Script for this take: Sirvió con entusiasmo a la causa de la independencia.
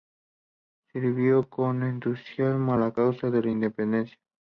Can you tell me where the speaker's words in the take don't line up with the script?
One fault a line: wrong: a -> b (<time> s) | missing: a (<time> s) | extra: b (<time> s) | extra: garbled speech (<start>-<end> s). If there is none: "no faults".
no faults